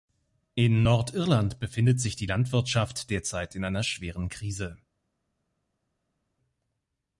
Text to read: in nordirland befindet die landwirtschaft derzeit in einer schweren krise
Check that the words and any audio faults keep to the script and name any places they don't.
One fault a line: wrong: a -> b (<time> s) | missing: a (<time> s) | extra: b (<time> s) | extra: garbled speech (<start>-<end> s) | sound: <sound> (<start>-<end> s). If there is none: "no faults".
extra: sich (2.0 s)